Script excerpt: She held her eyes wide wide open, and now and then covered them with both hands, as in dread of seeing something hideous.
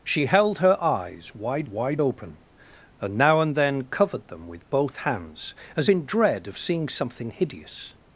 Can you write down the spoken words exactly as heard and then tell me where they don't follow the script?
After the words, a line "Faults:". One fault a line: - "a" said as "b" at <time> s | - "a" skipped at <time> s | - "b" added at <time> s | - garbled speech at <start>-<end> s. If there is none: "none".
She held her eyes wide wide open, and now and then covered them with both hands, as in dread of seeing something hideous.
Faults:
none